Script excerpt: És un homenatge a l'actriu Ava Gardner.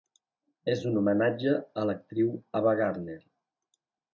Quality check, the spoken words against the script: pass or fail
pass